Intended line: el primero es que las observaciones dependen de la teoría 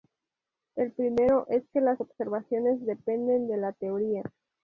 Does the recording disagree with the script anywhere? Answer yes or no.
no